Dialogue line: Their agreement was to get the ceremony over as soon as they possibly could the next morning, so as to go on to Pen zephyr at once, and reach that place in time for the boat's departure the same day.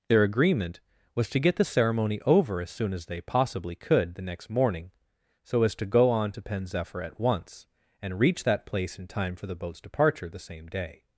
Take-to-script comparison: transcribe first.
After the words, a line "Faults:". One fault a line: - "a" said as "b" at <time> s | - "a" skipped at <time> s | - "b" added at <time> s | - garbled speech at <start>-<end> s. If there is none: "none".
Their agreement was to get the ceremony over as soon as they possibly could the next morning, so as to go on to Pen zephyr at once, and reach that place in time for the boat's departure the same day.
Faults:
none